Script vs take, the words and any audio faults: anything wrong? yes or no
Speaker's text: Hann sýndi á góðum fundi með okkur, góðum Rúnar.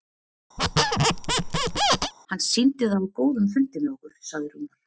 yes